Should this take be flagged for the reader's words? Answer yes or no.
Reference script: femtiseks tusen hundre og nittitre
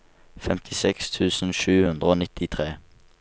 yes